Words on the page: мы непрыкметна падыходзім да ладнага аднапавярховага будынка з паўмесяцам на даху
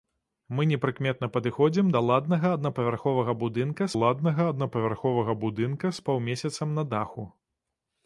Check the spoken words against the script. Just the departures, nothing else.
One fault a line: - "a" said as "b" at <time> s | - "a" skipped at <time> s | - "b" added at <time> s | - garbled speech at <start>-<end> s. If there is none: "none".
- "ладнага аднапавярховага будынка" added at 4.0 s